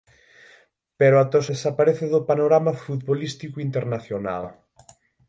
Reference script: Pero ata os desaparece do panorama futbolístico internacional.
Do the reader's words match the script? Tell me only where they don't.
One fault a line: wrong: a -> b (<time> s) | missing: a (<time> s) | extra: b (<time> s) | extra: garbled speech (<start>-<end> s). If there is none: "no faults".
no faults